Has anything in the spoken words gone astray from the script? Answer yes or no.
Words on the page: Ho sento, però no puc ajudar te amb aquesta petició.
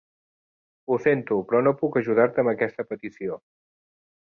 no